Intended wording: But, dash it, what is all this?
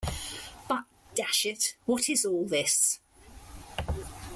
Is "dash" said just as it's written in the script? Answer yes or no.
yes